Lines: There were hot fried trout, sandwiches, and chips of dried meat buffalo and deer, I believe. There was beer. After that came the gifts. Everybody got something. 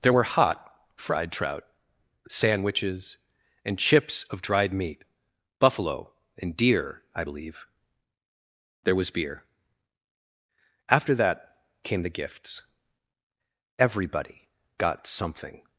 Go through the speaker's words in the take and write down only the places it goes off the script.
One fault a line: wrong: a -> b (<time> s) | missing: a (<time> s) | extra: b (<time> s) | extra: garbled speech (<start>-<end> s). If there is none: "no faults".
no faults